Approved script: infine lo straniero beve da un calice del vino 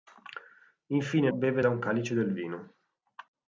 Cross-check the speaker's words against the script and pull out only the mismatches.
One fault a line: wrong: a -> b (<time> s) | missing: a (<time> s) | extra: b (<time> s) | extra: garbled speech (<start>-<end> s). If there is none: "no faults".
missing: lo straniero (1.3 s)